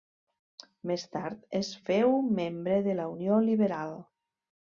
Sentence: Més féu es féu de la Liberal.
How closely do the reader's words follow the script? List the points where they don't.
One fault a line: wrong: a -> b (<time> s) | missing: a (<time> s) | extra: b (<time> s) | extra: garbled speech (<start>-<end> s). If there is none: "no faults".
wrong: féu -> tard (1.1 s)
extra: membre (2.4 s)
extra: Unió (3.2 s)